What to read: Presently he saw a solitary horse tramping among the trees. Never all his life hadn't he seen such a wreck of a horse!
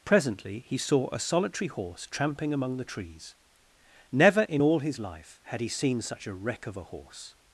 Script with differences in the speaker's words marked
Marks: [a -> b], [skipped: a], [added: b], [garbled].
Presently he saw a solitary horse tramping among the trees. Never [added: in] all his life [hadn't -> had] he seen such a wreck of a horse!